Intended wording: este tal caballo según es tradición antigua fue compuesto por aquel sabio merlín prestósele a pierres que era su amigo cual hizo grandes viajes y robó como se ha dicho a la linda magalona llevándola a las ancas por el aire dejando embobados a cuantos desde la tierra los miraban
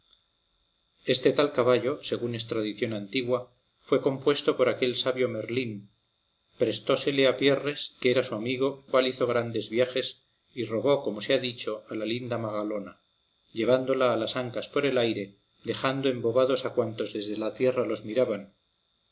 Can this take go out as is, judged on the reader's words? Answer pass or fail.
pass